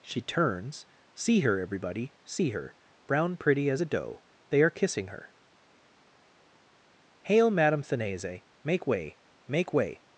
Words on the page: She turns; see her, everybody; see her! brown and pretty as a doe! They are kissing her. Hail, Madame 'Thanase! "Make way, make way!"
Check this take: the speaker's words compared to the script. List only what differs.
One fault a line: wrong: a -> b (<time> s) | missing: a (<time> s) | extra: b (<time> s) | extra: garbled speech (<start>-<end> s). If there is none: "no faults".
missing: and (3.4 s)